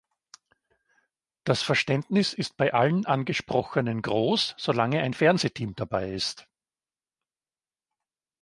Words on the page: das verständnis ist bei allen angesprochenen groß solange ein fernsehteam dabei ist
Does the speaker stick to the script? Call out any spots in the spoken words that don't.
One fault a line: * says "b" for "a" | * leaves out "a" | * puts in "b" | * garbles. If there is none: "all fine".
all fine